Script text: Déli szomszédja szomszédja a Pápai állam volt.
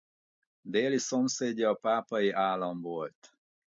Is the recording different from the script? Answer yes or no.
yes